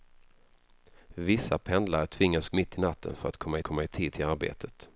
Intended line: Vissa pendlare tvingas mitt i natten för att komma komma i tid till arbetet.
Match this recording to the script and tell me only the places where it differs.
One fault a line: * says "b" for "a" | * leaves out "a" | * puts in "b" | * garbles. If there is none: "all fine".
all fine